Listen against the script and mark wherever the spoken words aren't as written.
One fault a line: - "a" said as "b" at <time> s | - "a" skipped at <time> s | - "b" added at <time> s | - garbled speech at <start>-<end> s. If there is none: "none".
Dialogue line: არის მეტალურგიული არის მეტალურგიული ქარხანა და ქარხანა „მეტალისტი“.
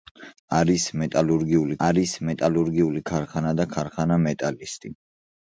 none